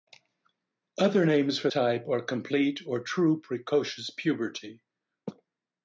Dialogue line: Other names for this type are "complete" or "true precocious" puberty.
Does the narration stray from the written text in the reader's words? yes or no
yes